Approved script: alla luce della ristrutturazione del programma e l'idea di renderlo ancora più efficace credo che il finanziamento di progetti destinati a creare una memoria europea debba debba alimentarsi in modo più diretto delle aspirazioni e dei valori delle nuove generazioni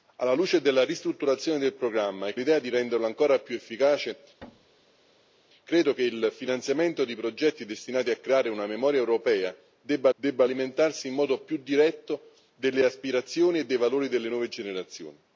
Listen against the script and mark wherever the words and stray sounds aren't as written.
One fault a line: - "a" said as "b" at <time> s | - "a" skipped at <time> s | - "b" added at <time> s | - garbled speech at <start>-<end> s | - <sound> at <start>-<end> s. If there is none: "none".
- thud at 4.4-5.4 s